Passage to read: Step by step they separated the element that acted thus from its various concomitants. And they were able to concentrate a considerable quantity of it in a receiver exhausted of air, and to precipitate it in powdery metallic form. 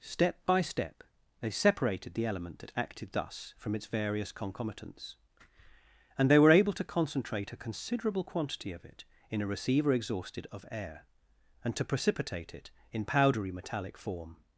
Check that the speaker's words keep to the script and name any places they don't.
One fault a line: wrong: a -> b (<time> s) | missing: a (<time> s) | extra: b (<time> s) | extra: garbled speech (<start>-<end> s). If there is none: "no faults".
no faults